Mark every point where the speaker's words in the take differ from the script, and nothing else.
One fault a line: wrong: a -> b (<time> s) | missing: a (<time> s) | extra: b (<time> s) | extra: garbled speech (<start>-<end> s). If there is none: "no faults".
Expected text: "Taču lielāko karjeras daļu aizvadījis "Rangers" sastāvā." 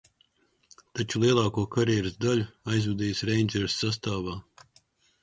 no faults